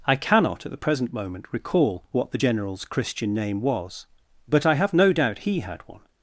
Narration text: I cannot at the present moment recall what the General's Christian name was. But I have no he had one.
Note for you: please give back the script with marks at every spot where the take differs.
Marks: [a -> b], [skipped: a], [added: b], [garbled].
I cannot at the present moment recall what the General's Christian name was. But I have no [added: doubt] he had one.